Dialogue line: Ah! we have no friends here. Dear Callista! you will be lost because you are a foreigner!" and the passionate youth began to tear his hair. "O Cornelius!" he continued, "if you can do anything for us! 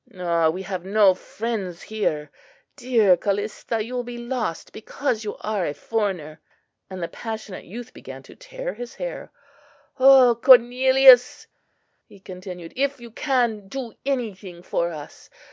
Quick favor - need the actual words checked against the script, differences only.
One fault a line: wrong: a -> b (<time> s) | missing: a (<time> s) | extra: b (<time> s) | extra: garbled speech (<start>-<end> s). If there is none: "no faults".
no faults